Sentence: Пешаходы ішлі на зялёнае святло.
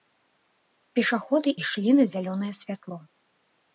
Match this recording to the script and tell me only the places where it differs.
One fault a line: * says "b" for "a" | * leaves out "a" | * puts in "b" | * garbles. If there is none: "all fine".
all fine